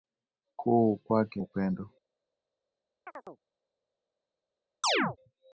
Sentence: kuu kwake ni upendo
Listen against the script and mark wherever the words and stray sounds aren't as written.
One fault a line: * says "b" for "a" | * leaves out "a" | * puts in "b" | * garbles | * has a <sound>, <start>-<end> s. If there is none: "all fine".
* leaves out "ni"
* has a chirp, 3.1-3.4 s
* has a chirp, 4.8-5.2 s